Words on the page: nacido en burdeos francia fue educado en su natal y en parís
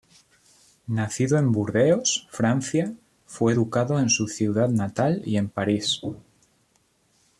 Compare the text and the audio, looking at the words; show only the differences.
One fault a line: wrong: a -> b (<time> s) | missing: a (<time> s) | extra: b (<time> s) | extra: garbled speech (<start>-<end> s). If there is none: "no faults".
extra: ciudad (4.3 s)